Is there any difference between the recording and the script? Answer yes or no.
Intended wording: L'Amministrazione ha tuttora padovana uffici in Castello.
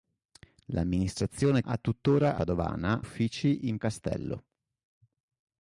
no